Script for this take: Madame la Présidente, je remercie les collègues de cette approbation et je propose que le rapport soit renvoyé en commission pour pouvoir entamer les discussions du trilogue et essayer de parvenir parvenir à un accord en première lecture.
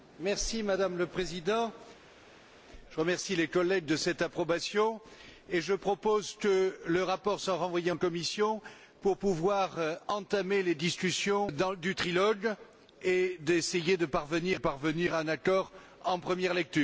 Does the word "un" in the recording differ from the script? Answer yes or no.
no